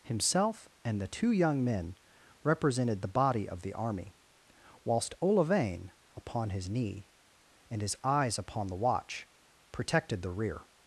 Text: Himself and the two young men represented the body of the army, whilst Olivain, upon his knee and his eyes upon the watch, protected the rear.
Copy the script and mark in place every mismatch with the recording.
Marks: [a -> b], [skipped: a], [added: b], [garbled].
Himself and the two young men represented the body of the army, whilst Olivain, upon his knee and his eyes upon the watch, protected the rear.